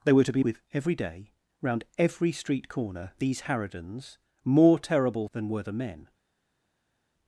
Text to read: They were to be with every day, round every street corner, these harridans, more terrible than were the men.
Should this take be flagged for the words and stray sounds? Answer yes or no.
no